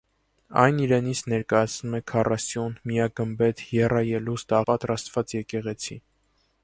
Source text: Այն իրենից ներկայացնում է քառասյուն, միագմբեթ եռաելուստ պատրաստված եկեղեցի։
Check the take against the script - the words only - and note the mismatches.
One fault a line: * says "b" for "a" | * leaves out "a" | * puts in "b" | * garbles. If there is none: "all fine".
all fine